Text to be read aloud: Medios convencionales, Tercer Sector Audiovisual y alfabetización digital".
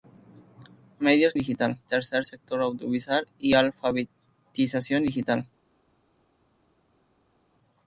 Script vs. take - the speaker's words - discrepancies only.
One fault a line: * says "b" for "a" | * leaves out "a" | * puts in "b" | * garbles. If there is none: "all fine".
* says "digital" for "convencionales"